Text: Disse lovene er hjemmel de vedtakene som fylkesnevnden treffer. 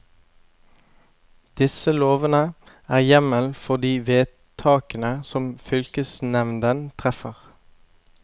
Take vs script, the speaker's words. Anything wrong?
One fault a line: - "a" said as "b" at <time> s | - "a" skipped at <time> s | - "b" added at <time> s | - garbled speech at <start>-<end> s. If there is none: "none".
- "for" added at 3.6 s